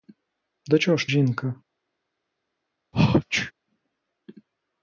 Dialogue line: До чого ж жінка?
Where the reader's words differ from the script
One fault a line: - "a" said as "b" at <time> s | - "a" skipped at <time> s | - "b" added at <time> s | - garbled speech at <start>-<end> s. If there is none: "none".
none